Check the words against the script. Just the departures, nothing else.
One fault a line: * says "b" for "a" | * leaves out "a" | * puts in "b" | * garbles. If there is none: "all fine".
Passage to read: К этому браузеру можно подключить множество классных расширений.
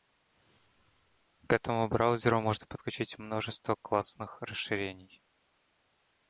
all fine